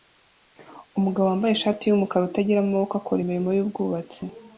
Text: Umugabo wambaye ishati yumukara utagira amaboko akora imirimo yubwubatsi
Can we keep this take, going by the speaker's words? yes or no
yes